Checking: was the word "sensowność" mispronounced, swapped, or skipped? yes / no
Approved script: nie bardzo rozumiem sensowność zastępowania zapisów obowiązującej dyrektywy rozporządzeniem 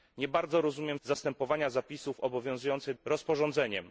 yes